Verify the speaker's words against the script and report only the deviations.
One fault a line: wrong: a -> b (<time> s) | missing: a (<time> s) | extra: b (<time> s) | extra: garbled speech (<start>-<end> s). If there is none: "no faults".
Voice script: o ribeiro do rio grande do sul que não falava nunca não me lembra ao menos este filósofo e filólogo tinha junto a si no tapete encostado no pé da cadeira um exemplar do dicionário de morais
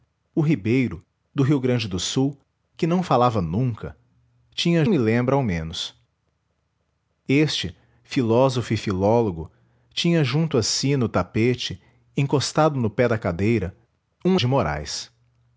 wrong: não -> tinha (4.5 s)
missing: exemplar do dicionário (14.4 s)